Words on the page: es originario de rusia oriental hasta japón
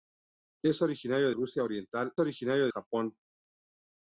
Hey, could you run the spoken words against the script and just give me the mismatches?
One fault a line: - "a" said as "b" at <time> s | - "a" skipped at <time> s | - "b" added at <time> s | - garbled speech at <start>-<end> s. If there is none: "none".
- "de" skipped at 1.3 s
- "hasta" said as "originario" at 2.2 s